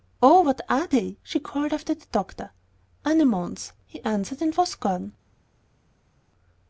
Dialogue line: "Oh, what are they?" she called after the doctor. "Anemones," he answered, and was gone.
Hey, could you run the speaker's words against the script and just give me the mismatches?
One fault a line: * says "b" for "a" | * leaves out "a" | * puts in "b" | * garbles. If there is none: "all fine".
all fine